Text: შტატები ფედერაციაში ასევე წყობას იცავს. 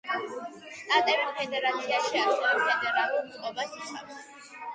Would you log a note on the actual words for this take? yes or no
yes